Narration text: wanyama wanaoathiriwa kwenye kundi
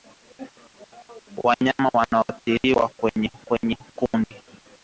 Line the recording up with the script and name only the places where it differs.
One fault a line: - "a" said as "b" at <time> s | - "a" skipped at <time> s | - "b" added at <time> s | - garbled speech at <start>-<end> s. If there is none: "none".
- "kwenye" added at 3.5 s